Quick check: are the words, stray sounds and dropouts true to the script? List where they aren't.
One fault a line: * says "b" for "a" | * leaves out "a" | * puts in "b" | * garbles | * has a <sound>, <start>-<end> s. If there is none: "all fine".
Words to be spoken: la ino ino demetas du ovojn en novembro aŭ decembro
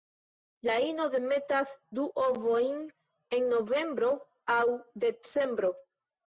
* leaves out "ino"